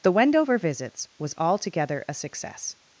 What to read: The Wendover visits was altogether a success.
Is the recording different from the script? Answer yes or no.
no